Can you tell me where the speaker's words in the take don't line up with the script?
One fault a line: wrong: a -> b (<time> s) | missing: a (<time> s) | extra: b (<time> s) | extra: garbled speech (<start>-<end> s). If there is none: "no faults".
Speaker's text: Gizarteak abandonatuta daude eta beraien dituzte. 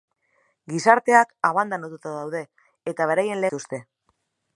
no faults